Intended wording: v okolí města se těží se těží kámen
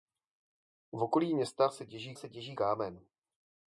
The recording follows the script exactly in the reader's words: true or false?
true